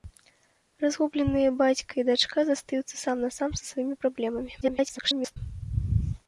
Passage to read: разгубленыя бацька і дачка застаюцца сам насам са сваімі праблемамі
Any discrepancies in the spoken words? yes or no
yes